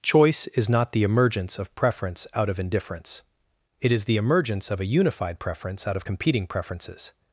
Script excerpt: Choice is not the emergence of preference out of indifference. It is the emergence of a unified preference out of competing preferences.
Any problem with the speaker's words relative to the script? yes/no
no